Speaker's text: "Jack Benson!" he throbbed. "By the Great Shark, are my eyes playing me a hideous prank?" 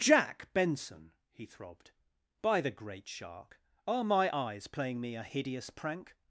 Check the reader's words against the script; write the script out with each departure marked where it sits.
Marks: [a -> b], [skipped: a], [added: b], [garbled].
"Jack Benson!" he throbbed. "By the Great Shark, are my eyes playing me a hideous prank?"